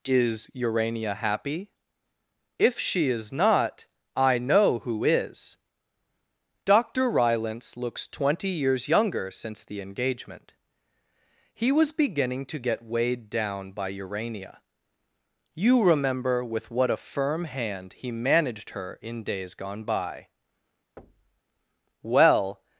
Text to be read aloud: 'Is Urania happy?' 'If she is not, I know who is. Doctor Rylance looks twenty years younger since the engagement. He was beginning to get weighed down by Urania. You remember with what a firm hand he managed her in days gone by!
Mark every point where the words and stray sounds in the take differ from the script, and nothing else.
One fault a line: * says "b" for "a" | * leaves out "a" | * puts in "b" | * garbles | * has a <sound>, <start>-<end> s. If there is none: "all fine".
* has a thud, 21.0-21.4 s
* puts in "Well"